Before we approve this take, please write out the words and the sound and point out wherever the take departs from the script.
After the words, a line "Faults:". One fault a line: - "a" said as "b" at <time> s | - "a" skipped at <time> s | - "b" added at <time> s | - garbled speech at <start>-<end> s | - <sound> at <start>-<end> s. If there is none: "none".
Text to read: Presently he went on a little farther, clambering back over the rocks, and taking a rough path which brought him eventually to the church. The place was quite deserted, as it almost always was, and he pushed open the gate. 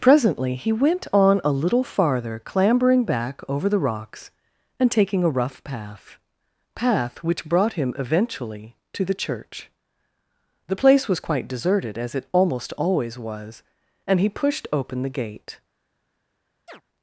Presently he went on a little farther, clambering back over the rocks, and taking a rough path path which brought him eventually to the church. The place was quite deserted, as it almost always was, and he pushed open the gate.
Faults:
- "path" added at 6.7 s
- chirp at 16.7-16.8 s